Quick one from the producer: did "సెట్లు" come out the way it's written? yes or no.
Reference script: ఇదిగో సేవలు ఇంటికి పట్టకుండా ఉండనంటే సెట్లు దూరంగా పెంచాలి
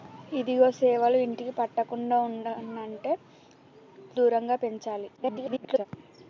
no